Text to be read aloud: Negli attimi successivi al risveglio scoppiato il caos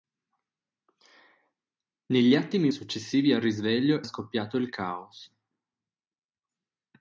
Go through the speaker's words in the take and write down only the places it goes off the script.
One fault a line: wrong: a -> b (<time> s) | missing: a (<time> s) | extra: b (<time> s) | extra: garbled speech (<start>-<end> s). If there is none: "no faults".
no faults